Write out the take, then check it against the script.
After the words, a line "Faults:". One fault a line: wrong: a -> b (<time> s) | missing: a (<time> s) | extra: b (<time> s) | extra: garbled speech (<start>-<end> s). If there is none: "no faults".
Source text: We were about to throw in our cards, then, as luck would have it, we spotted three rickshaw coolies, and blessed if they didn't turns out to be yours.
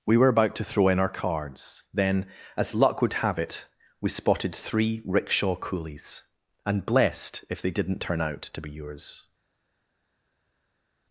We were about to throw in our cards, then, as luck would have it, we spotted three rickshaw coolies, and blessed if they didn't turn out to be yours.
Faults:
wrong: turns -> turn (8.0 s)